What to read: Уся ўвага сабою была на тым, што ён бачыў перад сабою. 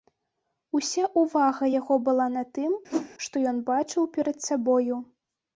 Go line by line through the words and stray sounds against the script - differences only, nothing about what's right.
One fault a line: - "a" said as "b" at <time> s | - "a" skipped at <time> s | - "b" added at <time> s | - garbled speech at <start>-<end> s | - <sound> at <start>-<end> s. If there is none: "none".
- "сабою" said as "яго" at 1.8 s
- whoosh at 2.9-3.1 s